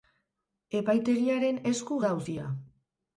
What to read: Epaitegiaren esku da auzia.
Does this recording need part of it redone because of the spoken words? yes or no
no